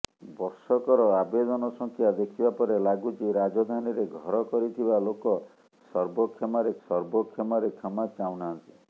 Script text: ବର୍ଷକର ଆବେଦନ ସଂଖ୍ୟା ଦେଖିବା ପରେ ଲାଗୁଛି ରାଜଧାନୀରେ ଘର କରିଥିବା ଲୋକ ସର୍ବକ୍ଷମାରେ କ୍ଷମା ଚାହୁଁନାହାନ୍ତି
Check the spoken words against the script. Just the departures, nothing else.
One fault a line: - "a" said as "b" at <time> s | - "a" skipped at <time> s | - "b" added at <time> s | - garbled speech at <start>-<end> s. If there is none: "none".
- "ସର୍ବକ୍ଷମାରେ" added at 6.9 s